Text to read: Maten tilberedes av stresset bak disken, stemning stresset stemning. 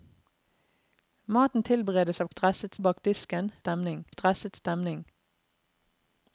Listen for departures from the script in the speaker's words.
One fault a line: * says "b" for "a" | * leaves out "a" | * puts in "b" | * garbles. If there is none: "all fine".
all fine